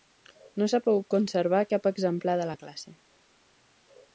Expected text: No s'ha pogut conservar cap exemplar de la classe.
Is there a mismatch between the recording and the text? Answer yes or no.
no